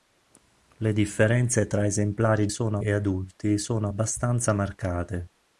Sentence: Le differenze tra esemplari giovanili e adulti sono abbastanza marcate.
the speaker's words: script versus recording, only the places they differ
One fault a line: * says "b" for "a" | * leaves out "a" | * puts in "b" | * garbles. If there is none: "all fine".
* says "sono" for "giovanili"